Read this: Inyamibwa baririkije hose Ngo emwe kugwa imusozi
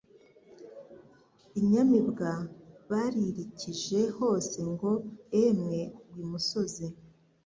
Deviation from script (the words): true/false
false